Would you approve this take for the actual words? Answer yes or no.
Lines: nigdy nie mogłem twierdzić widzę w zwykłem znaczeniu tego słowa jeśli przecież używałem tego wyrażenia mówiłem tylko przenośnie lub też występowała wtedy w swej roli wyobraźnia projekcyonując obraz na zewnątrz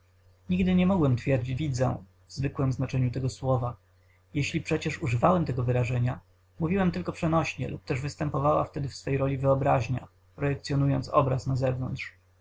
yes